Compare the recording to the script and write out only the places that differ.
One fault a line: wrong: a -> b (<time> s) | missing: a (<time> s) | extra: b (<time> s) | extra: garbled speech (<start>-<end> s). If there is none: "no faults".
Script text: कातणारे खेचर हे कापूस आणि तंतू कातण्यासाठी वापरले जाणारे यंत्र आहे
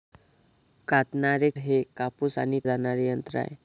missing: खेचर (1.5 s)
missing: तंतू कातण्यासाठी वापरले (2.6 s)